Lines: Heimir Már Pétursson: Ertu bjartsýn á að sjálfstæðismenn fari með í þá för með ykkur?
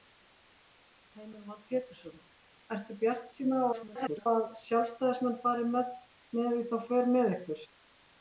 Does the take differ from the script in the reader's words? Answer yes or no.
yes